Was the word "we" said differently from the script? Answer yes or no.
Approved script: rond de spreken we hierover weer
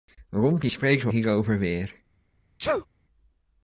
no